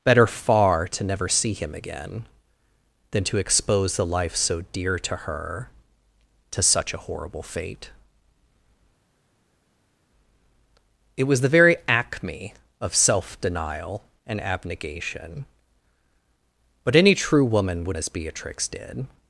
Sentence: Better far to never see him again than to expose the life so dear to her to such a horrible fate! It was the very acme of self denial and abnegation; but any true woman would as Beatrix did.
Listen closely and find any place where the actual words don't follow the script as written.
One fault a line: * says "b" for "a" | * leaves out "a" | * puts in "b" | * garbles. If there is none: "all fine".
all fine